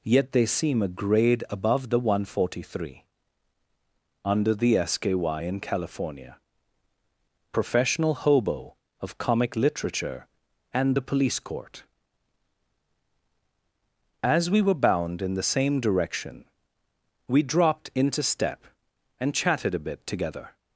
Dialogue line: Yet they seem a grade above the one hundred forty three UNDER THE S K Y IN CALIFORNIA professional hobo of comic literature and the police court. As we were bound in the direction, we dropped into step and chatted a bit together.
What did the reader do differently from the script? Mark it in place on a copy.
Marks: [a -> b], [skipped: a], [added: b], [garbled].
Yet they seem a grade above the one hundred forty three UNDER THE S K Y IN CALIFORNIA professional hobo of comic literature and the police court. As we were bound in the [added: same] direction, we dropped into step and chatted a bit together.